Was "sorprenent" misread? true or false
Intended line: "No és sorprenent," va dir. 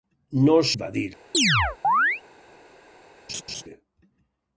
true